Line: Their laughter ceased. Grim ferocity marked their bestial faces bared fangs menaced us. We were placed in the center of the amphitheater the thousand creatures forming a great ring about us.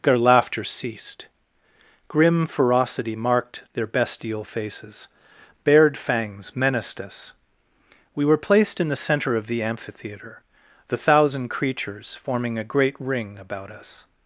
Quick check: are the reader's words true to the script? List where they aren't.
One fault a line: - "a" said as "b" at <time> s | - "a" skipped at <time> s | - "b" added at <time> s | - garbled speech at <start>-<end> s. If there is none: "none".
none